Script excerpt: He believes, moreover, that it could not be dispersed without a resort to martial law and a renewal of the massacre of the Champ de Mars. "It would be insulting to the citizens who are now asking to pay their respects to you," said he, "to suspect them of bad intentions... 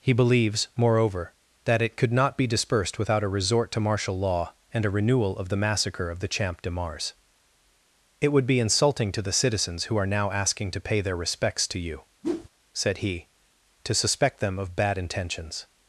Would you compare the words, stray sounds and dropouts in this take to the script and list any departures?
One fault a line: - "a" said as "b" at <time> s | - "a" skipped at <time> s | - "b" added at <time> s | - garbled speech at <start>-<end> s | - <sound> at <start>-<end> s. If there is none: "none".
- whoosh at 12.2-12.5 s